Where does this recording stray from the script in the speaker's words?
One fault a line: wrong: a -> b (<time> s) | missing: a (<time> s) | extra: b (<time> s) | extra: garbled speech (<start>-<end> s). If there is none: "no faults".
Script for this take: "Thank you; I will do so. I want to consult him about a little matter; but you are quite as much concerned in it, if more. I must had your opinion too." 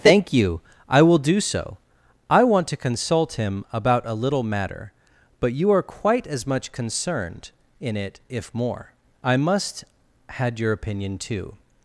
no faults